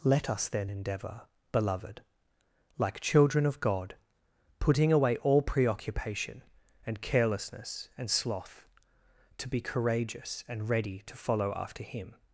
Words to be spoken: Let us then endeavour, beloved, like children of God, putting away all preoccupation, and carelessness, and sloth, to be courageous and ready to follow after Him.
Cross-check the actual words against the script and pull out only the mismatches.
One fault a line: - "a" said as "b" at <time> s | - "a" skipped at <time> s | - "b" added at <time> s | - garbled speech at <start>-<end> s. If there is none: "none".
none